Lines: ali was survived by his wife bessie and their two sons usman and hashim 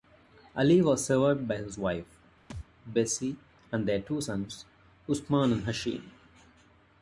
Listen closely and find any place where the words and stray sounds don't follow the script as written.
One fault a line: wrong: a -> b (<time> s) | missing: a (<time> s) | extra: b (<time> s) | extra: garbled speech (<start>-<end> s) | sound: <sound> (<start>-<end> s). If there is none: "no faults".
sound: thud (2.5-2.7 s)